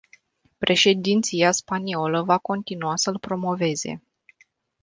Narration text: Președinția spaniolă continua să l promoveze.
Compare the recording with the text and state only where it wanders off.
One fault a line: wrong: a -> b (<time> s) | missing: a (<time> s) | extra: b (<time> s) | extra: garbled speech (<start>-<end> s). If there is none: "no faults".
extra: va (2.2 s)